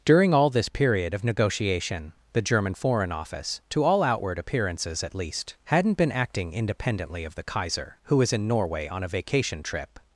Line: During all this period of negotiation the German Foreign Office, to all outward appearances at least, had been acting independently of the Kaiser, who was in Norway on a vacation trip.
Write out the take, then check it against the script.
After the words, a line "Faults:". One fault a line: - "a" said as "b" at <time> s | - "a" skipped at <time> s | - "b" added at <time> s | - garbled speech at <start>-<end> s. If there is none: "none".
During all this period of negotiation the German Foreign Office, to all outward appearances at least, hadn't been acting independently of the Kaiser, who was in Norway on a vacation trip.
Faults:
- "had" said as "hadn't" at 5.7 s